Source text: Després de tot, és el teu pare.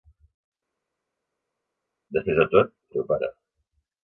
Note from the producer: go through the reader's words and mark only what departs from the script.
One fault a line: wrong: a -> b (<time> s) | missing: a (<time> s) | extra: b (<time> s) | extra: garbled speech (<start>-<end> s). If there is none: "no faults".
missing: és (2.7 s)